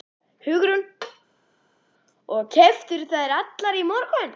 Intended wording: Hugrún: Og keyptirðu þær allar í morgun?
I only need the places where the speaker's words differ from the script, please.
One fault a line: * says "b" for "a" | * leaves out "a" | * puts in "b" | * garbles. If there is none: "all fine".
all fine